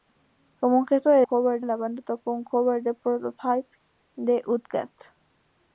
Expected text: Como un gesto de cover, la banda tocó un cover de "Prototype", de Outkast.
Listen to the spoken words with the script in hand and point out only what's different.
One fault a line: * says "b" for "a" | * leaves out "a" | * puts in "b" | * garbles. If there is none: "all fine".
all fine